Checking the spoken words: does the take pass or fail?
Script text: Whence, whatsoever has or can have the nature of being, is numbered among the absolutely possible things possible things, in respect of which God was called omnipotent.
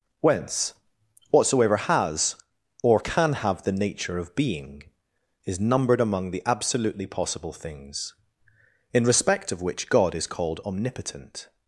fail